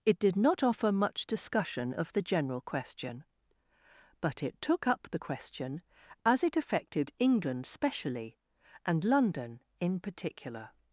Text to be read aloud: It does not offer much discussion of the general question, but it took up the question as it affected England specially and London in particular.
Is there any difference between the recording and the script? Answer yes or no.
yes